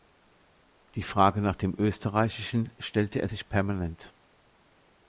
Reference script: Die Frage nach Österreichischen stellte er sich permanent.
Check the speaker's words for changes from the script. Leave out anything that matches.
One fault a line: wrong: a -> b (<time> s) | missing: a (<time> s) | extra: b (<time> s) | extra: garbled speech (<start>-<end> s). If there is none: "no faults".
extra: dem (1.6 s)